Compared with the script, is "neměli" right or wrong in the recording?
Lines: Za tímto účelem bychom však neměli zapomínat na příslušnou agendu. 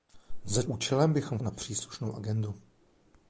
wrong